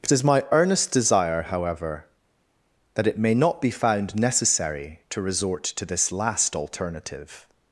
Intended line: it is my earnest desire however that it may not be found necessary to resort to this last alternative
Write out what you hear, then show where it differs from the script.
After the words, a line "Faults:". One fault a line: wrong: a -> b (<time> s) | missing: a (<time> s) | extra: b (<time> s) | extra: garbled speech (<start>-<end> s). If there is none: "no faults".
it is my earnest desire however that it may not be found necessary to resort to this last alternative
Faults:
no faults